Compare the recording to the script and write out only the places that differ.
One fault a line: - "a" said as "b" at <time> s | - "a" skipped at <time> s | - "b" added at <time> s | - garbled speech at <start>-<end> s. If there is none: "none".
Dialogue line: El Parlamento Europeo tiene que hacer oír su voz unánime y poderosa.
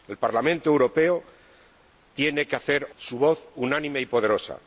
- "oír" skipped at 2.9 s